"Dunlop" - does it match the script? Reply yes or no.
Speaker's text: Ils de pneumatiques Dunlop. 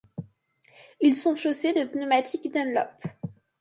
yes